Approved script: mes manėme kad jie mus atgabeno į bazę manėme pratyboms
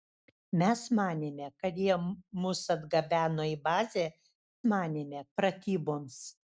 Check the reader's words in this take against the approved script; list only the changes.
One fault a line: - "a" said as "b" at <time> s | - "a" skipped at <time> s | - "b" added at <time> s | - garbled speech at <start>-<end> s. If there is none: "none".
none